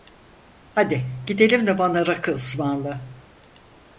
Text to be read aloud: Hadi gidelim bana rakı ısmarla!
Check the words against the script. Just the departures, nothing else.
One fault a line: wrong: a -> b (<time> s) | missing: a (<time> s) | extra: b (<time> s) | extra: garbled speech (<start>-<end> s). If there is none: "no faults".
extra: de (1.7 s)